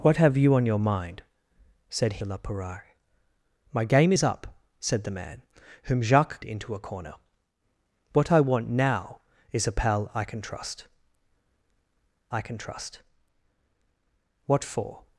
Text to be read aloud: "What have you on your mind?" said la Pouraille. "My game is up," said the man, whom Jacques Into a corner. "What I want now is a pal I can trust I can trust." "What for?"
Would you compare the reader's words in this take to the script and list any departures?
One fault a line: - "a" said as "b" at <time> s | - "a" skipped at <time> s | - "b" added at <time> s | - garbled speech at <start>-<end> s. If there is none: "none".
none